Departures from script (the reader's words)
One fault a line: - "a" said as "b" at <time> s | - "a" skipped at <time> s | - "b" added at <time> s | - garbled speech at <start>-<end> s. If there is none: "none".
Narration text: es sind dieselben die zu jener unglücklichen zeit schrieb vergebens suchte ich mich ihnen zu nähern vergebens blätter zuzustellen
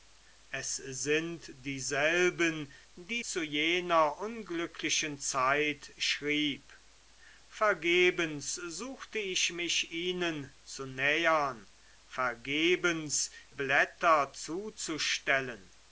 none